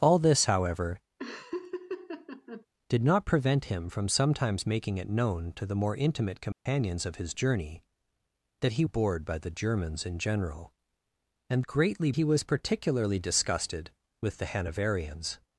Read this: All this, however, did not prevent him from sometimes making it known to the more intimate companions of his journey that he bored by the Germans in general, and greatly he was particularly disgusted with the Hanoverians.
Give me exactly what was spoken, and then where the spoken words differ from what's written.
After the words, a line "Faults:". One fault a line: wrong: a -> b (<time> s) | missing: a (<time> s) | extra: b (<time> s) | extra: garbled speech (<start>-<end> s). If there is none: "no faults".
All this, however, did not prevent him from sometimes making it known to the more intimate companions of his journey that he bored by the Germans in general, and greatly he was particularly disgusted with the Hanoverians.
Faults:
no faults